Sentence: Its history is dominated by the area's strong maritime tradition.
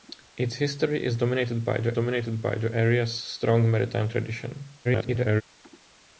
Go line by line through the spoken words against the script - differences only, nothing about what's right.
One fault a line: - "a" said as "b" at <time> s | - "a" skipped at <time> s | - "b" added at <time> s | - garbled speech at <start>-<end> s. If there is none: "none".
- "dominated by the" added at 1.9 s
- garbled speech at 4.8-5.4 s